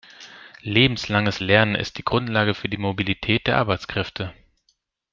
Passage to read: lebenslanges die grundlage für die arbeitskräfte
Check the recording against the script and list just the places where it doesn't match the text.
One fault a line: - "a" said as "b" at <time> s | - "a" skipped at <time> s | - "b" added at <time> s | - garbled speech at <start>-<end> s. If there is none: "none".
- "lernen ist" added at 1.4 s
- "mobilität der" added at 2.8 s